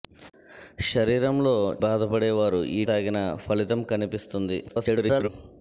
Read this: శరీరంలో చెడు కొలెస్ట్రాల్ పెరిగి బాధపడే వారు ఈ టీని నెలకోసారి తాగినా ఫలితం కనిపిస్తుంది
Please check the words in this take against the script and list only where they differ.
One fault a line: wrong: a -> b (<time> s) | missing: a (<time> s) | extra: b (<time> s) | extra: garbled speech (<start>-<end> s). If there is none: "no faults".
missing: చెడు కొలెస్ట్రాల్ పెరిగి (1.5 s)
missing: టీని నెలకోసారి (2.8 s)
extra: garbled speech (4.7-5.3 s)